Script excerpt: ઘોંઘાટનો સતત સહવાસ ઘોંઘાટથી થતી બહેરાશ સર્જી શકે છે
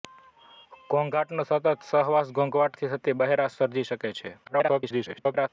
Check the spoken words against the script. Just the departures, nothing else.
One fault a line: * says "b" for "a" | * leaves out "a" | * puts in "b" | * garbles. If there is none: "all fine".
* garbles